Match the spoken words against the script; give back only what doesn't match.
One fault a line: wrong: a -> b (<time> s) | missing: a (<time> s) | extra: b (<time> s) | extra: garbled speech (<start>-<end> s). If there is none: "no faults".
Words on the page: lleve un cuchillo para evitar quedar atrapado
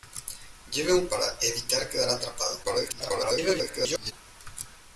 missing: cuchillo (1.1 s)
extra: garbled speech (2.6-4.1 s)